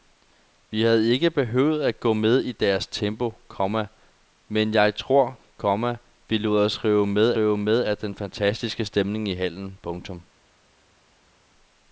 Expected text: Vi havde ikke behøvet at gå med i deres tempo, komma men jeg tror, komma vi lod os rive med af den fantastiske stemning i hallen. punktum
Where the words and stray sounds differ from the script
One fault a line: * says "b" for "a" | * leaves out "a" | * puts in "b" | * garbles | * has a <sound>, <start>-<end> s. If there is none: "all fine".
* puts in "rive med"